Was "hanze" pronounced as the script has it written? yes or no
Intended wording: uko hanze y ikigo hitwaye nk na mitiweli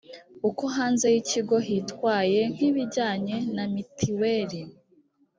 yes